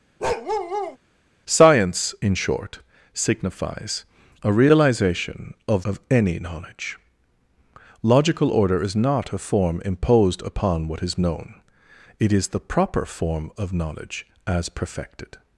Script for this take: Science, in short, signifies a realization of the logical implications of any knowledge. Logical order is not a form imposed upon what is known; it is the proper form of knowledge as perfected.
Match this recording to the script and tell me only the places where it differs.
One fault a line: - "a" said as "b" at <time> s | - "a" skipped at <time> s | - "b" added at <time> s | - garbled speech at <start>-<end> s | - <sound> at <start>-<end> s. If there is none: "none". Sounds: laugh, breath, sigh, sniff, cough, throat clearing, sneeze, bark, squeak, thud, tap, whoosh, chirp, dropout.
- bark at 0.2-1.0 s
- "the logical implications" skipped at 5.8 s